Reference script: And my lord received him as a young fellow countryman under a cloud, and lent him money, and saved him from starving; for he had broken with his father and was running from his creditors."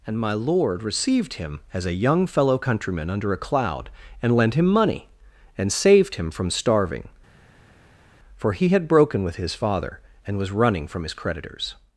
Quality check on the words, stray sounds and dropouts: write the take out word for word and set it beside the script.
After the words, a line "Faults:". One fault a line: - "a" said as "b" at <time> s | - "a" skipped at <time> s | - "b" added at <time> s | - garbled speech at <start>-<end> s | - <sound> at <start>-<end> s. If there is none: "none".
And my lord received him as a young fellow countryman under a cloud, and lent him money, and saved him from starving; for he had broken with his father and was running from his creditors."
Faults:
none